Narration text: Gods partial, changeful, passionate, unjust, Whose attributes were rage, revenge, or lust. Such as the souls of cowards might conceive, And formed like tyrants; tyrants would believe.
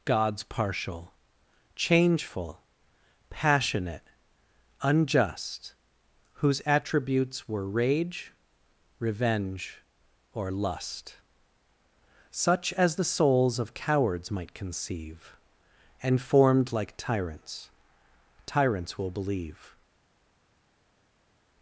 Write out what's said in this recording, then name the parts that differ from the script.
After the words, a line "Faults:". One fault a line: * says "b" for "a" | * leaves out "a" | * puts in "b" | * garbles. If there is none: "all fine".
Gods partial, changeful, passionate, unjust, Whose attributes were rage, revenge, or lust. Such as the souls of cowards might conceive, And formed like tyrants; tyrants will believe.
Faults:
* says "will" for "would"